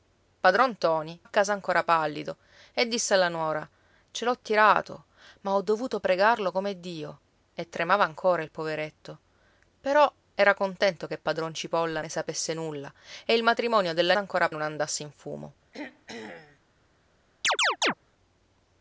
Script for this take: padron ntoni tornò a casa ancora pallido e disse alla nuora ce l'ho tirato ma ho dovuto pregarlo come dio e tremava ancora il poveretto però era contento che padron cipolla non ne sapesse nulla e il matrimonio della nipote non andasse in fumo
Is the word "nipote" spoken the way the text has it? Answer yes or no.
no